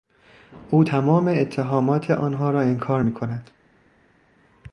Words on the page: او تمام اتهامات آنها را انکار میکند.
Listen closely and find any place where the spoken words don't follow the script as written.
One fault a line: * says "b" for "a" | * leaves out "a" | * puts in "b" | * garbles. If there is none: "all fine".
all fine